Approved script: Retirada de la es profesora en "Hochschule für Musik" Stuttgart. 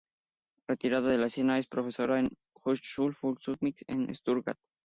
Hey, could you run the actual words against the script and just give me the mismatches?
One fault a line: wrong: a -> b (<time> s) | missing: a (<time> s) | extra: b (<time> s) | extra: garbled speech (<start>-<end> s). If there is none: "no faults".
extra: escena (1.3 s)
extra: la (2.2 s)
extra: en (3.9 s)